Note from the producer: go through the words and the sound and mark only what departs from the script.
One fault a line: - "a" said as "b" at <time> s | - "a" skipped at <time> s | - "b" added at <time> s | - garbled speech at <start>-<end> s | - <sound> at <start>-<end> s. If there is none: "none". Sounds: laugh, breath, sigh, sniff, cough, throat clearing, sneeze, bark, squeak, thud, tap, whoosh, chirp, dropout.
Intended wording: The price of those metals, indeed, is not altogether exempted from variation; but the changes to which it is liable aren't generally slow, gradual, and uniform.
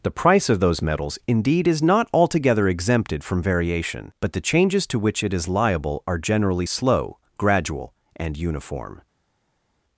- "aren't" said as "are" at 6.1 s